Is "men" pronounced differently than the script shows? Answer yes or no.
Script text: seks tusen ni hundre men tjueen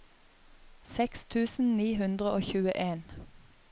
yes